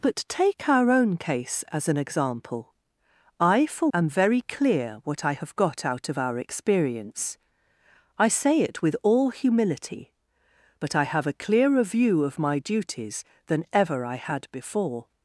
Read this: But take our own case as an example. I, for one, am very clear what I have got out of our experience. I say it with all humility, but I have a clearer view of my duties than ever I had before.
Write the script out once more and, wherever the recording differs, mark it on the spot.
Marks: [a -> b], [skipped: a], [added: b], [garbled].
But take our own case as an example. I, for [skipped: one,] am very clear what I have got out of our experience. I say it with all humility, but I have a clearer view of my duties than ever I had before.